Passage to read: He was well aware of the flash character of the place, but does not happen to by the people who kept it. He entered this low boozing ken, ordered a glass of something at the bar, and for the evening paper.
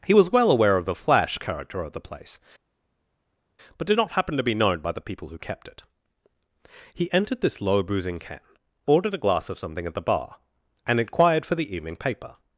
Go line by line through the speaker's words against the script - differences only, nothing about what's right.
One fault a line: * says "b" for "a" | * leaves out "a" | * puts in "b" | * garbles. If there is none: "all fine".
* says "did" for "does"
* puts in "be known"
* puts in "inquired"